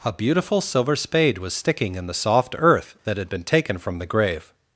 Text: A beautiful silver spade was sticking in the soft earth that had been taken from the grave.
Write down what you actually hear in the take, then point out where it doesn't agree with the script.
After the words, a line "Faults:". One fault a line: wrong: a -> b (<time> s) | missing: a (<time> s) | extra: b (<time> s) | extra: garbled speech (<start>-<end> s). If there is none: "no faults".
A beautiful silver spade was sticking in the soft earth that had been taken from the grave.
Faults:
no faults